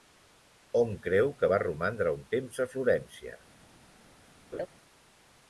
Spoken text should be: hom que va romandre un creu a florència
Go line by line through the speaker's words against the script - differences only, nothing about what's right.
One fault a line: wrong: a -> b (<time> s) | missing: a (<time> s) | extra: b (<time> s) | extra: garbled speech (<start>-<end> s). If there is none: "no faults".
extra: creu (1.0 s)
wrong: creu -> temps (2.4 s)